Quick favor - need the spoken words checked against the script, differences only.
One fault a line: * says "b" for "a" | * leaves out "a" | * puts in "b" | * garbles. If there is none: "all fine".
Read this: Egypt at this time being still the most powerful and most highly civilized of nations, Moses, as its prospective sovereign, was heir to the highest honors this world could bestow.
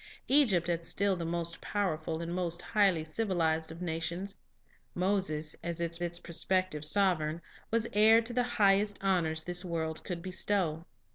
* leaves out "this time being"
* puts in "its"